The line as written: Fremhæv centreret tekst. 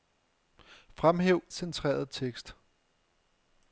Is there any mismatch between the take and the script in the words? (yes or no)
no